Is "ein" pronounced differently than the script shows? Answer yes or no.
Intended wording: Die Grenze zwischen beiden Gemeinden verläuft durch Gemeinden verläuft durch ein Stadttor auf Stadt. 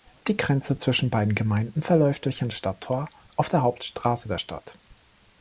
yes